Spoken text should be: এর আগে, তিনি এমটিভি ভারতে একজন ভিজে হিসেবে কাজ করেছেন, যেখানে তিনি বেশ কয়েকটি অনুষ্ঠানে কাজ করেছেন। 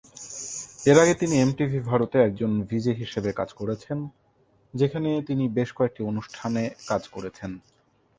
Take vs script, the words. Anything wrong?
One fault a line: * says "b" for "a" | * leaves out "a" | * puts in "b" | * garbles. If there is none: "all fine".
all fine